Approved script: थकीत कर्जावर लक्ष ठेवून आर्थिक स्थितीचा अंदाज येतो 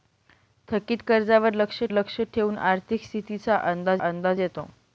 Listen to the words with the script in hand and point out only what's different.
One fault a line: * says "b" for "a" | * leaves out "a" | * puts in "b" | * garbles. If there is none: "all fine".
* puts in "लक्ष"
* puts in "अंदाज"